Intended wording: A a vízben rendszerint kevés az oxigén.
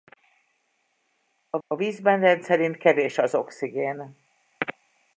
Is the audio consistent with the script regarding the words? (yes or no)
yes